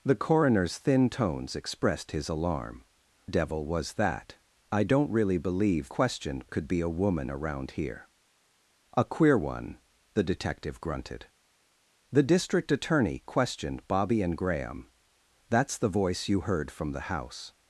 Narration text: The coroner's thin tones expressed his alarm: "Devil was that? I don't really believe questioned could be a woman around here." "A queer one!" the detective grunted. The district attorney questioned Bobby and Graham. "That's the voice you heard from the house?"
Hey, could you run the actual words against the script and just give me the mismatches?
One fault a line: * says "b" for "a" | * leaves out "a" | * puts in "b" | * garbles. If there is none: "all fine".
all fine